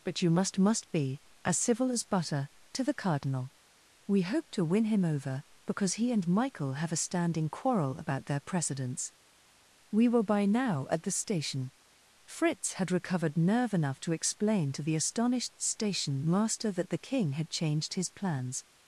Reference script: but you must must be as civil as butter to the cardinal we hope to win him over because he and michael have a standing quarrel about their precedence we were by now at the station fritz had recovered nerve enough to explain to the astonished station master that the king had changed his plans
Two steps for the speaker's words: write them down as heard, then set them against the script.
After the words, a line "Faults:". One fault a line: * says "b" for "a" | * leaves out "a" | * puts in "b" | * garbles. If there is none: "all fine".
but you must must be as civil as butter to the cardinal we hope to win him over because he and michael have a standing quarrel about their precedence we were by now at the station fritz had recovered nerve enough to explain to the astonished station master that the king had changed his plans
Faults:
all fine